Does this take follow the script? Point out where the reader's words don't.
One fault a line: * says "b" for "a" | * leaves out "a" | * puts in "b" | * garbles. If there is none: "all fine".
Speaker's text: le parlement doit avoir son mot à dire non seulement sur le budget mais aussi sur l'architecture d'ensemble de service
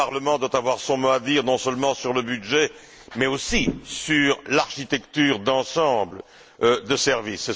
all fine